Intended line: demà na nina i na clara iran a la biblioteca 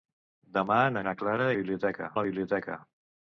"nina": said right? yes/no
no